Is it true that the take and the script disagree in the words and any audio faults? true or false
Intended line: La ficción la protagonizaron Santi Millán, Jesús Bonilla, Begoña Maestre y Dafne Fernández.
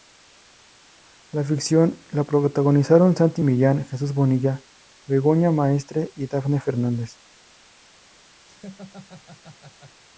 true